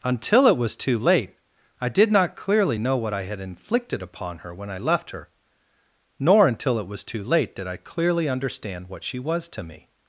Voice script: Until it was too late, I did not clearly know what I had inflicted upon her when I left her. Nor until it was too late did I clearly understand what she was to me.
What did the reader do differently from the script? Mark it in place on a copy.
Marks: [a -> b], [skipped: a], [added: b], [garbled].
Until it was too late, I did not clearly know what I had inflicted upon her when I left her. Nor until it was too late did I clearly understand what she was to me.